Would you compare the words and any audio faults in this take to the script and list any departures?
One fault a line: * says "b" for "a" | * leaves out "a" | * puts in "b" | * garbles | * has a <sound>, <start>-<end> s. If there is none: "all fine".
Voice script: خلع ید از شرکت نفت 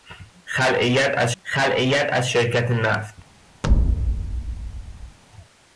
* puts in "خلع ید از"
* has a thud, 3.6-5.2 s